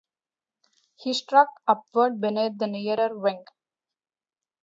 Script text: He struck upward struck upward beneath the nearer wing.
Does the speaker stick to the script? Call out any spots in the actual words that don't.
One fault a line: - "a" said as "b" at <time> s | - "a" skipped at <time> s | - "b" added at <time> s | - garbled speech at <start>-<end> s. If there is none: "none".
- "struck upward" skipped at 2.2 s